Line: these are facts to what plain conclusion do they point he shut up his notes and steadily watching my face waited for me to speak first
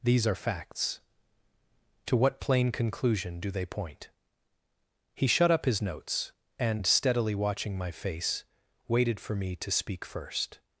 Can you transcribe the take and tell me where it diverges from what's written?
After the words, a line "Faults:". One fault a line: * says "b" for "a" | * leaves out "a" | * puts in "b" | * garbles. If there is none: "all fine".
these are facts to what plain conclusion do they point he shut up his notes and steadily watching my face waited for me to speak first
Faults:
all fine